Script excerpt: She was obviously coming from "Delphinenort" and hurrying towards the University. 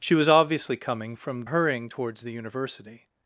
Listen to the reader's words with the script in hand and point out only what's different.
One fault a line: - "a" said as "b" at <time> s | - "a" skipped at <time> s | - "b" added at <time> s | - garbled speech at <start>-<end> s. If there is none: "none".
- "Delphinenort and" skipped at 1.4 s